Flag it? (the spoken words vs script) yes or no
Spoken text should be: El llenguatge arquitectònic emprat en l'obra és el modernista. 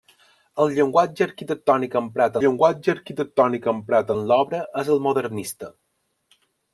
yes